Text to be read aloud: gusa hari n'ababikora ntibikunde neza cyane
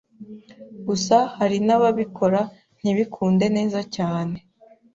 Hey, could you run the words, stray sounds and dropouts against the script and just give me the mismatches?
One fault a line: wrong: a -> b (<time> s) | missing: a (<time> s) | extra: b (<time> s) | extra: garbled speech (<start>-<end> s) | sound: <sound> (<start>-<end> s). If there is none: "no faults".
no faults